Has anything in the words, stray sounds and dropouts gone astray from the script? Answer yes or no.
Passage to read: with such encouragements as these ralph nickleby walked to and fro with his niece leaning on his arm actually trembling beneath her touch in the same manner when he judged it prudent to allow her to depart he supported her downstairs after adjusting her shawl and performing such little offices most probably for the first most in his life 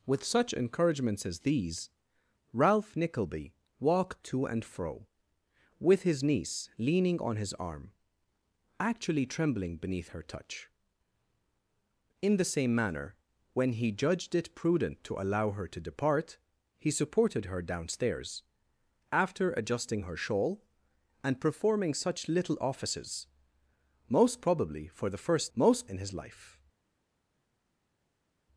no